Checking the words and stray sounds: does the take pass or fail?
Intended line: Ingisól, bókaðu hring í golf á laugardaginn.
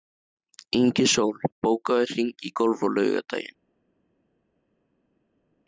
pass